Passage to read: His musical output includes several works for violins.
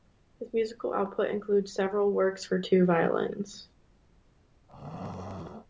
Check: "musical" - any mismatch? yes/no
no